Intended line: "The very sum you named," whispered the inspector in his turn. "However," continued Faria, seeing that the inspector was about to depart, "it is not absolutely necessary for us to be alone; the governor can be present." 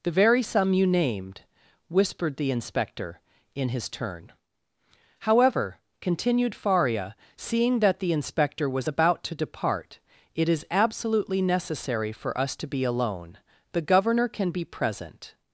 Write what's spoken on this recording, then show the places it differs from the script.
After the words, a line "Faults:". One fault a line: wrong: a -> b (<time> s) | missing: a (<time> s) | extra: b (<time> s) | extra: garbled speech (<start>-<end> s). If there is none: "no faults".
"The very sum you named," whispered the inspector in his turn. "However," continued Faria, seeing that the inspector was about to depart, "it is absolutely necessary for us to be alone; the governor can be present."
Faults:
missing: not (10.7 s)